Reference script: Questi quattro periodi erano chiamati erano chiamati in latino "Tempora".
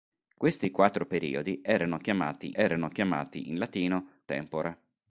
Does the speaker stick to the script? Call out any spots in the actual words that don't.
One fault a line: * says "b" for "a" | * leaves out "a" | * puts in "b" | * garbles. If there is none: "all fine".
all fine